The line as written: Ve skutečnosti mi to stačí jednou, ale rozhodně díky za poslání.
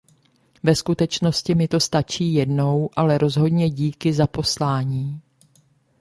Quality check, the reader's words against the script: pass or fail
pass